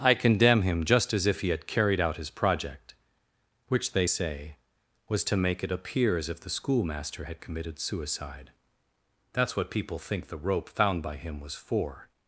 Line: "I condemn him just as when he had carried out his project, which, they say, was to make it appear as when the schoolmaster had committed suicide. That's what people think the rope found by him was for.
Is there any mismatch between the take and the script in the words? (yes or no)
yes